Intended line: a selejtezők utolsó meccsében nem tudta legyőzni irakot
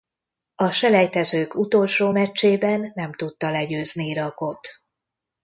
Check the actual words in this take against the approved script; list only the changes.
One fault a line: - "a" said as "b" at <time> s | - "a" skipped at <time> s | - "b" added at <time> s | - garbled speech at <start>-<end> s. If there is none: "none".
none